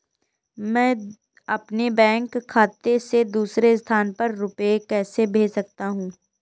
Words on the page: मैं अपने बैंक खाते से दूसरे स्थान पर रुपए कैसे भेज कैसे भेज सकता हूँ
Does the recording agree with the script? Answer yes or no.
no